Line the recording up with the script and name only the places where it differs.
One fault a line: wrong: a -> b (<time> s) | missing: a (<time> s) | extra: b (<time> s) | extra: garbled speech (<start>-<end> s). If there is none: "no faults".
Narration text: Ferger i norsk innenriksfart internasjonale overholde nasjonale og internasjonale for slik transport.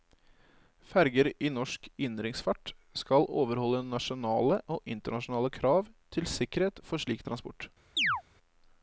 wrong: internasjonale -> skal (3.0 s)
extra: krav til sikkerhet (5.6 s)